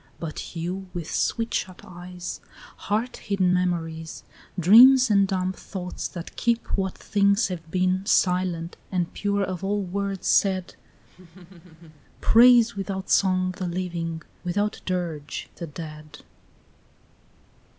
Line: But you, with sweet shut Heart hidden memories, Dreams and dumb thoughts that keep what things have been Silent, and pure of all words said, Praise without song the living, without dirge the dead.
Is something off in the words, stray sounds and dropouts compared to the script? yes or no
yes